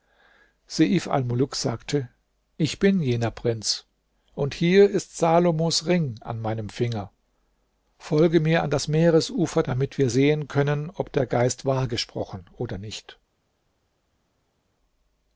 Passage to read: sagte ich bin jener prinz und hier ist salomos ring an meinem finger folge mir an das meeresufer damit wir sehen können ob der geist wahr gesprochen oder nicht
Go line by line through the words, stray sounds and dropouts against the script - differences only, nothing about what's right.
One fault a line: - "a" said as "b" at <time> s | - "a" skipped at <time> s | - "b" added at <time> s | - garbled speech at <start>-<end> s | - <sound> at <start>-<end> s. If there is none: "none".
none